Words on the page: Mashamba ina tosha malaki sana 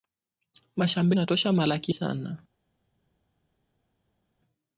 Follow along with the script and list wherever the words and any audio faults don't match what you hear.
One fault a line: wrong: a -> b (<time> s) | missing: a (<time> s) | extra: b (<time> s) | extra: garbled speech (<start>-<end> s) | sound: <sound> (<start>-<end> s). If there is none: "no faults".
no faults